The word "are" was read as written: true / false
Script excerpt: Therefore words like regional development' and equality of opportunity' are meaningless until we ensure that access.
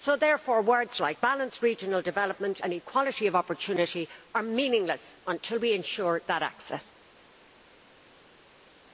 true